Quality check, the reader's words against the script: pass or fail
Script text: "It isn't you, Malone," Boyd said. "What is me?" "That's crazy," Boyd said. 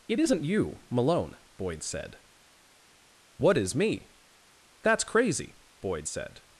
pass